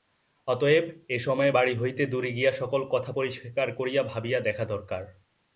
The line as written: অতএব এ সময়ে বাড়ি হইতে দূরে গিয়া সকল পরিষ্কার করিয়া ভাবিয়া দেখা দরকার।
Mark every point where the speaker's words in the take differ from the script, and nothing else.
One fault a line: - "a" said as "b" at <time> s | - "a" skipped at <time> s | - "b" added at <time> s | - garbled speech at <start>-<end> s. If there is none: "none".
- "কথা" added at 2.9 s